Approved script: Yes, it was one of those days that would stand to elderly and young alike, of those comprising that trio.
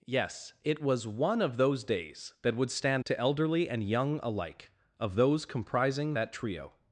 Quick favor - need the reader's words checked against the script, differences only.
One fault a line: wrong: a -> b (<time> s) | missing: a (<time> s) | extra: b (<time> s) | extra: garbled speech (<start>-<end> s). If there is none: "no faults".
no faults